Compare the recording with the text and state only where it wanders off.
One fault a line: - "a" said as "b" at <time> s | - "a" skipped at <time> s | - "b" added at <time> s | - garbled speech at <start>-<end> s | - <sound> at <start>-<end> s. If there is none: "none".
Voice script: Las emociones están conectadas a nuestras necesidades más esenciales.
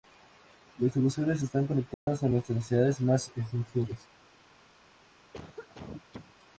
- dropout at 1.9-2.1 s
- cough at 5.3-6.3 s